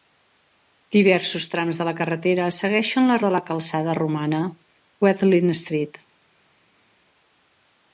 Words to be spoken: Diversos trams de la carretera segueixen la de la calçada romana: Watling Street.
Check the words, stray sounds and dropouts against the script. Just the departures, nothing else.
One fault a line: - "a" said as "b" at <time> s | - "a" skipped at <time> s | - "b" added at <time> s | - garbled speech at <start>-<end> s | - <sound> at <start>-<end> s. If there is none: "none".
none